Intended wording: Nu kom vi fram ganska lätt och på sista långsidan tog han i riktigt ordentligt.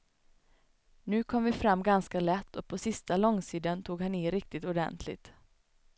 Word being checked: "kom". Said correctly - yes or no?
yes